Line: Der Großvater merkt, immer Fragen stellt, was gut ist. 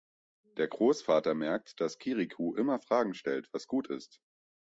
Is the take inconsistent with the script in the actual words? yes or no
yes